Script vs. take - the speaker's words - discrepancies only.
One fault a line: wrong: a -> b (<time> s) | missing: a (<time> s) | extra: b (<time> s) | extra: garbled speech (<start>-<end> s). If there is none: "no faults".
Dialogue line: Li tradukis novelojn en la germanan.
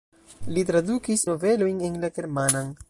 no faults